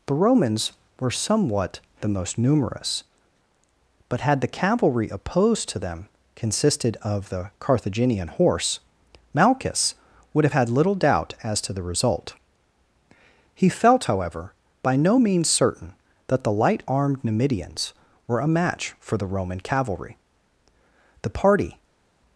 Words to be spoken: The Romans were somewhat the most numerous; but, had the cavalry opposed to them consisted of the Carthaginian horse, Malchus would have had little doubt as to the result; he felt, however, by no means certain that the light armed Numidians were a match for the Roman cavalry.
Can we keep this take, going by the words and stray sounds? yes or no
no